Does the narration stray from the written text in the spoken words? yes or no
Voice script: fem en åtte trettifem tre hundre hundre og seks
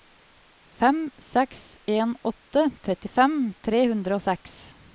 yes